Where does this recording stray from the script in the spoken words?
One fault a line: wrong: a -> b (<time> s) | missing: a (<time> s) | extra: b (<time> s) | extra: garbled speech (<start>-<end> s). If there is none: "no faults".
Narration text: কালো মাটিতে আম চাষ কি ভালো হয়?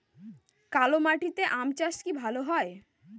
no faults